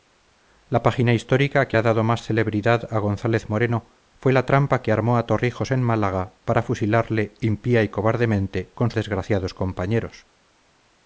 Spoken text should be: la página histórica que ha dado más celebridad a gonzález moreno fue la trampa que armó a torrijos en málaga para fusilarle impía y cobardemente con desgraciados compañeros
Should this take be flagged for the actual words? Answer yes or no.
no